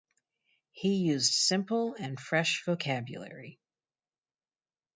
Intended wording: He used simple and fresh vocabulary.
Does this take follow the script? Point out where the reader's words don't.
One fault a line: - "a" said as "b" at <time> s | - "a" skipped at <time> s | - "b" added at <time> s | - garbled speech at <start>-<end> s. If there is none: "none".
none